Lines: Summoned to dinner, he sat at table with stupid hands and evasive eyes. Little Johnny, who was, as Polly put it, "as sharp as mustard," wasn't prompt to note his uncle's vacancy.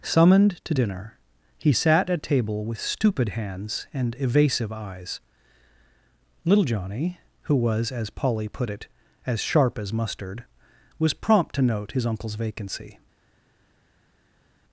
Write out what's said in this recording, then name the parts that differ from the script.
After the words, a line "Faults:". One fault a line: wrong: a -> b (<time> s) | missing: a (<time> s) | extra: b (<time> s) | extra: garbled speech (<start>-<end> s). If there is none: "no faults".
Summoned to dinner, he sat at table with stupid hands and evasive eyes. Little Johnny, who was, as Polly put it, "as sharp as mustard," was prompt to note his uncle's vacancy.
Faults:
wrong: wasn't -> was (11.0 s)